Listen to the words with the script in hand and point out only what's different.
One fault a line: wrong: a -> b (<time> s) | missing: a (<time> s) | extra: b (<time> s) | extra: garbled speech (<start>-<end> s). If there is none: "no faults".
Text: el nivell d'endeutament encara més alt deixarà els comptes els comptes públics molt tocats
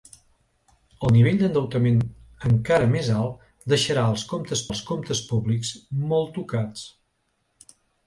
no faults